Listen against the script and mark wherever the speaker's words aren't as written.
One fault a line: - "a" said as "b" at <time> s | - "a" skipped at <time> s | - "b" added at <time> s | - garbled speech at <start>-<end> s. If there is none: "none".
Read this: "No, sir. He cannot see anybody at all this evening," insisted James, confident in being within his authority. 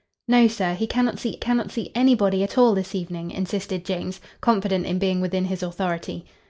- "cannot see" added at 1.4 s